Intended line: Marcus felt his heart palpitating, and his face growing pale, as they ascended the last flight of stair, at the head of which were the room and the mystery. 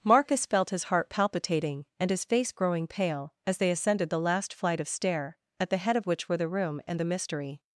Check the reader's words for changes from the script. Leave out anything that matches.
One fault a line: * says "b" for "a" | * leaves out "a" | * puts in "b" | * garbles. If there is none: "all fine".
all fine